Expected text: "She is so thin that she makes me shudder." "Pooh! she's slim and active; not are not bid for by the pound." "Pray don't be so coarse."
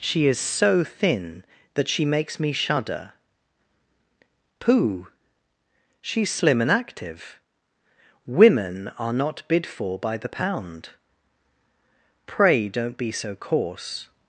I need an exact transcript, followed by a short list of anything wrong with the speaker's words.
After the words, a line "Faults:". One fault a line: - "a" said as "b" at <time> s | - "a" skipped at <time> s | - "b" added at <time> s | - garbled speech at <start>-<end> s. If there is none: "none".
"She is so thin that she makes me shudder." "Pooh! she's slim and active; women are not bid for by the pound." "Pray don't be so coarse."
Faults:
- "not" said as "women" at 8.2 s